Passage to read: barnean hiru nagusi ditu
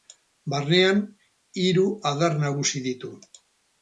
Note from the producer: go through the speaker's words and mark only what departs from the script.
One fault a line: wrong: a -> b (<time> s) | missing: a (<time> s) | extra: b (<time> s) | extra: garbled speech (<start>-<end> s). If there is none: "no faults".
extra: adar (2.1 s)